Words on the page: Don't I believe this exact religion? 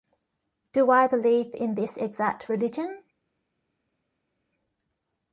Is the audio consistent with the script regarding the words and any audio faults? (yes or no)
no